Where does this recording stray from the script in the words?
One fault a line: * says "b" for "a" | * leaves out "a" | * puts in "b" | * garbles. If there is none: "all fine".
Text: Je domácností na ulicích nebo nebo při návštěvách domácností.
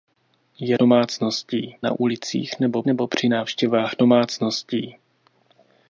all fine